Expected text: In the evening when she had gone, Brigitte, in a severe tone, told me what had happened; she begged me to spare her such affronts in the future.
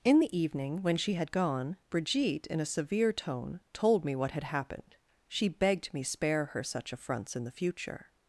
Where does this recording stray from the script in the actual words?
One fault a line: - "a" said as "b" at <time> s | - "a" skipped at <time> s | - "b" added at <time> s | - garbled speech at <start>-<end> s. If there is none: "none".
- "to" skipped at 6.0 s